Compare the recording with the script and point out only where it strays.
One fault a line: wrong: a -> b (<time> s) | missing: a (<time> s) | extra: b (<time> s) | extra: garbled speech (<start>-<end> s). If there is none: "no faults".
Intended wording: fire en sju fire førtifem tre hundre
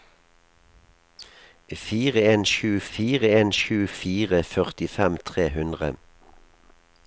extra: en sju fire (3.4 s)